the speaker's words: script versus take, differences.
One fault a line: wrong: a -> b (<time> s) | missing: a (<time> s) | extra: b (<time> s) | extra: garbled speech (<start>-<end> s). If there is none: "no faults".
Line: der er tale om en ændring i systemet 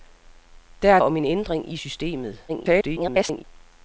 missing: tale (1.0 s)
extra: garbled speech (2.5-3.4 s)